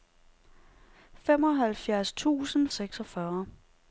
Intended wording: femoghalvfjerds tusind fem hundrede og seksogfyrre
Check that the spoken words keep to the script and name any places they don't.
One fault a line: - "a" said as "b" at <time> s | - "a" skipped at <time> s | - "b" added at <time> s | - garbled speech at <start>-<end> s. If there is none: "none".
- "fem hundrede og" skipped at 2.7 s